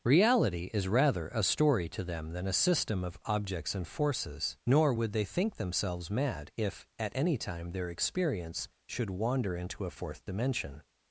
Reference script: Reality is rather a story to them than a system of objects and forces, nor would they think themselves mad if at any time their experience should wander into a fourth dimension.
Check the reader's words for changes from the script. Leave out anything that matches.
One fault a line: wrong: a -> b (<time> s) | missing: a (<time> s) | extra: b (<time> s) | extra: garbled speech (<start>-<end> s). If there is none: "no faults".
no faults